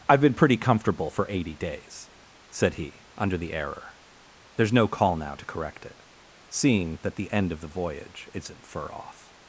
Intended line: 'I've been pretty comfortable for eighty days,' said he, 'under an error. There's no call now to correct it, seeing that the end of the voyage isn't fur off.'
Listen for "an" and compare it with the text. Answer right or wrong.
wrong